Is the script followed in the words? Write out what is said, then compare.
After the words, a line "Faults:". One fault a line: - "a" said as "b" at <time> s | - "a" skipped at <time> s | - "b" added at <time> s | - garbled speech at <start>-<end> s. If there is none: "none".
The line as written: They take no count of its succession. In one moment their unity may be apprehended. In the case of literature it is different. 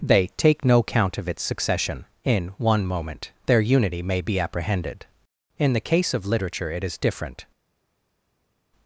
They take no count of its succession. In one moment their unity may be apprehended. In the case of literature it is different.
Faults:
none